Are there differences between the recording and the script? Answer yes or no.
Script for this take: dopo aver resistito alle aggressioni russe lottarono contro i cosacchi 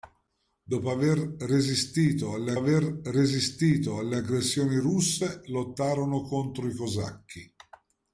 yes